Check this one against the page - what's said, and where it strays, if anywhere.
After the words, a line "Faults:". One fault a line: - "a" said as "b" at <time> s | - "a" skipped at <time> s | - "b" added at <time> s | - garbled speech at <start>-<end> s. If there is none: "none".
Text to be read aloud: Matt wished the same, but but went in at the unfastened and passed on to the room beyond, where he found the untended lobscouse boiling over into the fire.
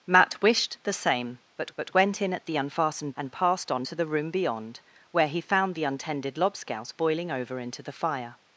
Matt wished the same, but but went in at the unfastened and passed on to the room beyond, where he found the untended lobscouse boiling over into the fire.
Faults:
none